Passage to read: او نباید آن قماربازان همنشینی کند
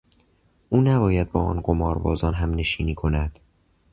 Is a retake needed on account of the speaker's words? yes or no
yes